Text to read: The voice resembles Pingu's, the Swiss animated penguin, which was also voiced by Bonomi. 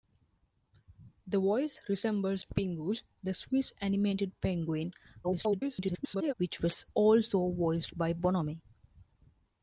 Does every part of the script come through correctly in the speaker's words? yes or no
no